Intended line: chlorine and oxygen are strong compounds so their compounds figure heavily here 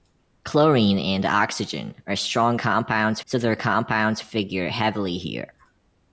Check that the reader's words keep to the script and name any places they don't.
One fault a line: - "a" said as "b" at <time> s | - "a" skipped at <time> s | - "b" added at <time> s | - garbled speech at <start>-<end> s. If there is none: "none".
none